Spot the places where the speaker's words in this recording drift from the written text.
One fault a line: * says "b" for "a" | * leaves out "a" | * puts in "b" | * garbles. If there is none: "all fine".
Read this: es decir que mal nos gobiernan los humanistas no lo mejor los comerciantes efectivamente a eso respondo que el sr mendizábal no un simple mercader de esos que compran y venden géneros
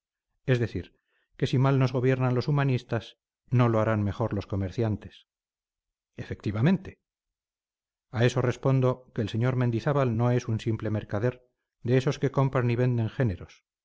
* puts in "si"
* puts in "harán"
* puts in "es"